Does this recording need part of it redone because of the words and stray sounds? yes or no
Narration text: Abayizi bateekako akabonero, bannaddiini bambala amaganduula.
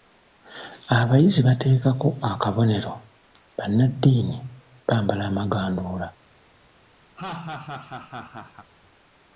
yes